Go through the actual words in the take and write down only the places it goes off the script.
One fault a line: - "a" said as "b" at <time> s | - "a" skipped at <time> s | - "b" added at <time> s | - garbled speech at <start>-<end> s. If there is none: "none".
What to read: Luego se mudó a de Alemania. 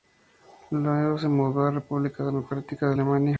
- "la República Democrática" added at 1.6 s